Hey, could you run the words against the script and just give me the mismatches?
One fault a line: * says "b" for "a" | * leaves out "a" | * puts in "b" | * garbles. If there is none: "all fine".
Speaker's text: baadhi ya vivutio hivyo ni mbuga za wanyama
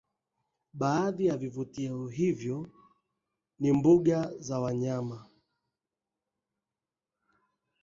all fine